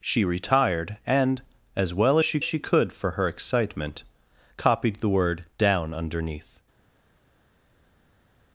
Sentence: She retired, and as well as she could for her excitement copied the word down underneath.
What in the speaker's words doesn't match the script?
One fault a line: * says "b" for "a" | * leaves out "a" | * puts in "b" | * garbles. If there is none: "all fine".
* puts in "she"